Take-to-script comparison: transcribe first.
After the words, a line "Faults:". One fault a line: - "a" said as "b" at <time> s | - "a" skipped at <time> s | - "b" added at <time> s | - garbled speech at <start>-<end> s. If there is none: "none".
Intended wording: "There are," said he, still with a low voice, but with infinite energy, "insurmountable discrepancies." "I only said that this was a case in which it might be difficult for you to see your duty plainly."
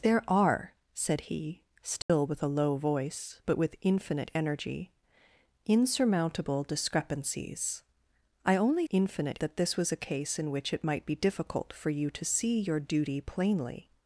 "There are," said he, still with a low voice, but with infinite energy, "insurmountable discrepancies." "I only infinite that this was a case in which it might be difficult for you to see your duty plainly."
Faults:
- "said" said as "infinite" at 8.9 s